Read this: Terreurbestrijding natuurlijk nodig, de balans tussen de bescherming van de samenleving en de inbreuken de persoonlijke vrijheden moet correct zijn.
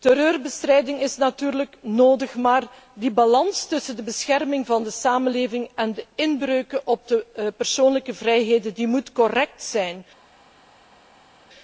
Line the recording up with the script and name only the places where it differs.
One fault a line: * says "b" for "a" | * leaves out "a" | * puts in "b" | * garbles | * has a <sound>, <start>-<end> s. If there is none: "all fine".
* puts in "is"
* puts in "maar"
* puts in "op"